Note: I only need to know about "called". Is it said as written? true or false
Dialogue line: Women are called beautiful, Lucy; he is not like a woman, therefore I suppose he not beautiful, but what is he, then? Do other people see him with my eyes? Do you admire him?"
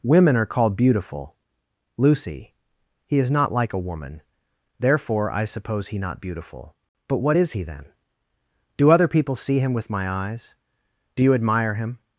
true